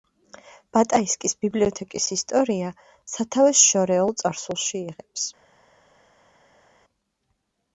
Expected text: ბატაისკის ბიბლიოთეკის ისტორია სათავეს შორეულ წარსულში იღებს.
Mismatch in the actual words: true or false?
false